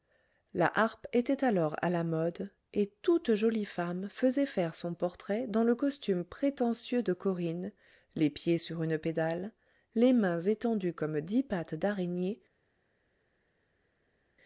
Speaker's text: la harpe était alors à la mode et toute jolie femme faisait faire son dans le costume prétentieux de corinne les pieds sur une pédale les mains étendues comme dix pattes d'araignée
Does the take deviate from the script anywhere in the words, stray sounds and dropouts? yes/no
yes